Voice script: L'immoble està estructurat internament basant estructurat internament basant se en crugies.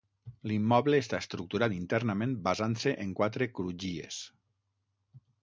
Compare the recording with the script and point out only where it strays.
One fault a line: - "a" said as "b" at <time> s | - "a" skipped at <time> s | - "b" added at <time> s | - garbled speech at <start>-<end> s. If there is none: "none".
- "estructurat internament basant" skipped at 2.8 s
- "quatre" added at 3.2 s